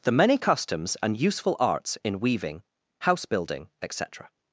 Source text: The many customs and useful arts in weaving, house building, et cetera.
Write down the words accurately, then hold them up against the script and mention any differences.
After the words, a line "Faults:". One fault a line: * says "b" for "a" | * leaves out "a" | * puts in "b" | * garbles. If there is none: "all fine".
The many customs and useful arts in weaving, house building, et cetera.
Faults:
all fine